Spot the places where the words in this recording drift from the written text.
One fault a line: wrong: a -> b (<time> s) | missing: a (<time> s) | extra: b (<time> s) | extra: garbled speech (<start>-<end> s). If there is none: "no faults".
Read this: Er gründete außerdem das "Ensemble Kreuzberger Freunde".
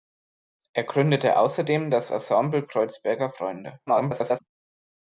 extra: garbled speech (3.9-4.4 s)